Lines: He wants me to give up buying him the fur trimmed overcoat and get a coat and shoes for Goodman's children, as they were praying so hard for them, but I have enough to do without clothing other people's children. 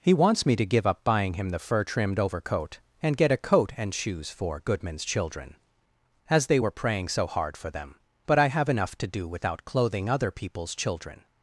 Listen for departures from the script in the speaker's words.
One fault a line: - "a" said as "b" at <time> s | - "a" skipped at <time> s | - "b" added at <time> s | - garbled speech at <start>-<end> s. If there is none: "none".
none